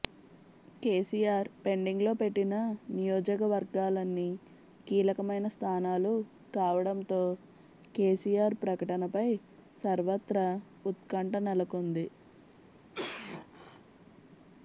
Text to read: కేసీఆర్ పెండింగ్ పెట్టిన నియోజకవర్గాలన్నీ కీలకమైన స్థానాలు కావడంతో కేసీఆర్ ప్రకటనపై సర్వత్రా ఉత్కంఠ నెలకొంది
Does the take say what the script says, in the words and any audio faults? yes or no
no